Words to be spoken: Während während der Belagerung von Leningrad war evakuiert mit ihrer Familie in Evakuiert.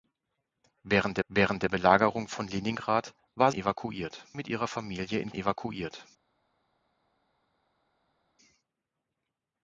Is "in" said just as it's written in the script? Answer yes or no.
yes